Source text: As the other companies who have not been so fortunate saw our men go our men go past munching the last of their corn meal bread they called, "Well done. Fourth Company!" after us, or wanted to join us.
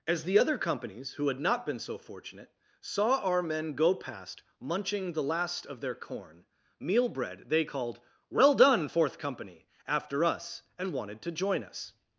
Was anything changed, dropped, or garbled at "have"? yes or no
yes